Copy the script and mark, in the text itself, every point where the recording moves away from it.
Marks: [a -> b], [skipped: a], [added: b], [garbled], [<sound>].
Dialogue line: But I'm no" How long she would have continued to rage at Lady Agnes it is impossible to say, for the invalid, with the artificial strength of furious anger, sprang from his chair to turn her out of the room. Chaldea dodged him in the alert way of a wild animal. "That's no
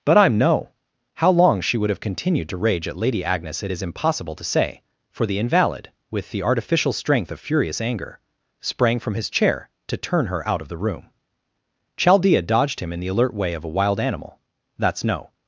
But I'm no" How long she would have continued to rage at Lady Agnes it is impossible to say, for the invalid, with the artificial strength of furious anger, sprang from his chair to turn her out of the room. Chaldea dodged him in the alert way of a wild animal. "That's no